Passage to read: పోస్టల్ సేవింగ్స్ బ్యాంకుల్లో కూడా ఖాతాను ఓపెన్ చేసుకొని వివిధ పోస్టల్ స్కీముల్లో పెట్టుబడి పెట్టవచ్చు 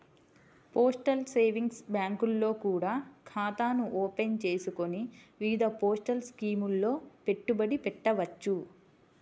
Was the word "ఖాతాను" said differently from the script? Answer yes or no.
no